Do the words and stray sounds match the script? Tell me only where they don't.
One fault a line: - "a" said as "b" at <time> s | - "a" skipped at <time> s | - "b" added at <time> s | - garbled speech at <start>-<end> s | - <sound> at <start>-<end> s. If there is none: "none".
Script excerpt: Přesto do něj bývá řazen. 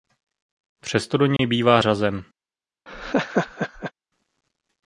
- dropout at 1.4-1.4 s
- laugh at 2.9-3.9 s